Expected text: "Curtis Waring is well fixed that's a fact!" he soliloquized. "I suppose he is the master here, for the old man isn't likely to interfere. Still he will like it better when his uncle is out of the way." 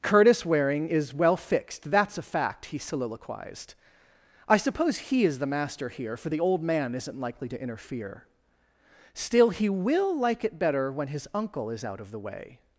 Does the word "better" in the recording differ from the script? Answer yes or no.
no